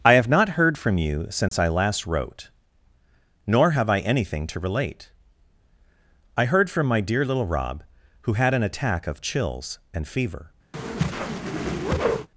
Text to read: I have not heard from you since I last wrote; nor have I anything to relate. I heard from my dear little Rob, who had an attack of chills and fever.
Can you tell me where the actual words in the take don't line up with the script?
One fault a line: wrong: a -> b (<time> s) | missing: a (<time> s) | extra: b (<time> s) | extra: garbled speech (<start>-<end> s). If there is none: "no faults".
no faults